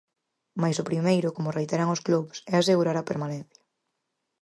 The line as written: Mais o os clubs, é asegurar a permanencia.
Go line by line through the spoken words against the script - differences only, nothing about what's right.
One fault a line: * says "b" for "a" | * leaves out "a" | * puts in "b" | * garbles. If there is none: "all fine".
* puts in "primeiro como reiteran"